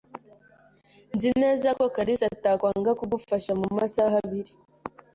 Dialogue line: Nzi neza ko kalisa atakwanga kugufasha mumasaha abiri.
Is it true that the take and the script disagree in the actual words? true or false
false